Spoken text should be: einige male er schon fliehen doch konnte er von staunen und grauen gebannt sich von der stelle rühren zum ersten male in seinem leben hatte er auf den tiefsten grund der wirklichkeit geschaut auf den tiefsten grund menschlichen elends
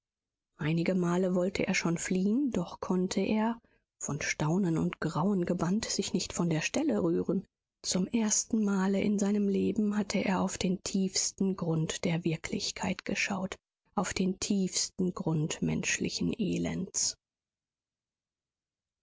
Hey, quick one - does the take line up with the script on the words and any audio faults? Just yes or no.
no